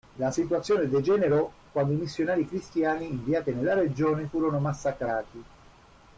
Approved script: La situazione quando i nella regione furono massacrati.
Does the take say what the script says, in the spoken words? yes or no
no